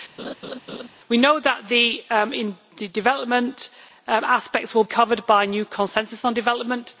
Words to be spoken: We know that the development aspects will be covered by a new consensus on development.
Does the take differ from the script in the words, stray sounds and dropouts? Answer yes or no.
yes